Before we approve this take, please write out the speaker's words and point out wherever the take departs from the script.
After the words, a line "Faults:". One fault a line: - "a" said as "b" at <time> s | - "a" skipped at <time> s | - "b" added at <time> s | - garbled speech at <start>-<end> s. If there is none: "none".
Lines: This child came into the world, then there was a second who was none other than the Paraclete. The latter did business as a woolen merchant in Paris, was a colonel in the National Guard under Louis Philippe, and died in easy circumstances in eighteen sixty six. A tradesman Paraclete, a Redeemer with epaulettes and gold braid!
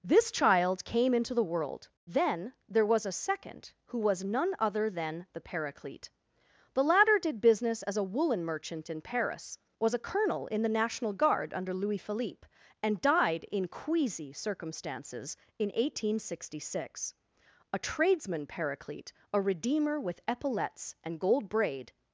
This child came into the world, then there was a second who was none other than the Paraclete. The latter did business as a woolen merchant in Paris, was a colonel in the National Guard under Louis Philippe, and died in queasy circumstances in eighteen sixty six. A tradesman Paraclete, a Redeemer with epaulettes and gold braid!
Faults:
- "easy" said as "queasy" at 13.7 s